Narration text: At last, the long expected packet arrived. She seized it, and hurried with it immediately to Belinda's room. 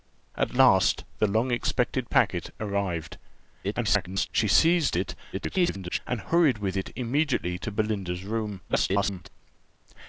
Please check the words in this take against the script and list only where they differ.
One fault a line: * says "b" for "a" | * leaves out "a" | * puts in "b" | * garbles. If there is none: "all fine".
* garbles
* garbles
* garbles